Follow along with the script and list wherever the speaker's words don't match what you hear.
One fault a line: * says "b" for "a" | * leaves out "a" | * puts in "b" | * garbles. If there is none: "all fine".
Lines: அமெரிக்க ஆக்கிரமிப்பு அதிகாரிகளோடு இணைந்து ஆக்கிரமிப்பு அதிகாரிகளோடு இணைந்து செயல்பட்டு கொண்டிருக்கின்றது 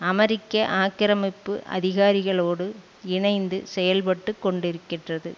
* leaves out "ஆக்கிரமிப்பு அதிகாரிகளோடு இணைந்து"